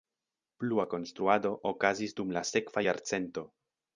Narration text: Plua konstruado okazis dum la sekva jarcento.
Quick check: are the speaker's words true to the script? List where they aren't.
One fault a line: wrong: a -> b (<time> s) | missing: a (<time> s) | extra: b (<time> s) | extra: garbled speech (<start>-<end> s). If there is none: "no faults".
no faults